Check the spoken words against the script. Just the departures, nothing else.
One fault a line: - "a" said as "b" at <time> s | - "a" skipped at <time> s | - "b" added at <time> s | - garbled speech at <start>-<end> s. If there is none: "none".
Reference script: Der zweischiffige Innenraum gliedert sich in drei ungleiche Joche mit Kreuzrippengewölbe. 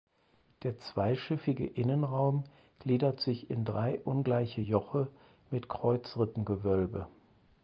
none